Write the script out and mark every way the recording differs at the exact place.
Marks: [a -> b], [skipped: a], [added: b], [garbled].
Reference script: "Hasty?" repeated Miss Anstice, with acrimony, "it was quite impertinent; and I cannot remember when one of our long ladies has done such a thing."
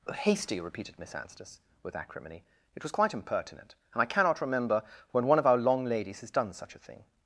"Hasty?" repeated Miss Anstice, with acrimony, "it was quite impertinent; and I cannot remember when one of our long ladies has done such a thing."